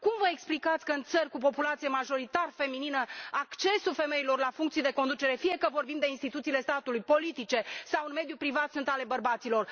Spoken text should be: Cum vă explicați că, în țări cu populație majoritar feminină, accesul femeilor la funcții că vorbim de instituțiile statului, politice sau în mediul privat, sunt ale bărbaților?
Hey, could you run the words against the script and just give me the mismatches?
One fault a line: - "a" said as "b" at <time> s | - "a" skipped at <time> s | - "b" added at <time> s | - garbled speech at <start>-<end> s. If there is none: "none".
- "de conducere fie" added at 4.8 s